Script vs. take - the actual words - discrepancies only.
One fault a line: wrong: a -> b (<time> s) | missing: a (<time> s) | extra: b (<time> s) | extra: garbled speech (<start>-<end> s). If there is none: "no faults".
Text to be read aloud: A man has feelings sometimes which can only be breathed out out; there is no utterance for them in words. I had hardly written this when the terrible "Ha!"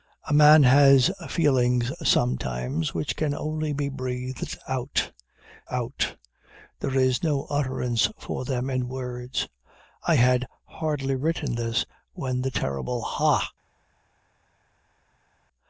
no faults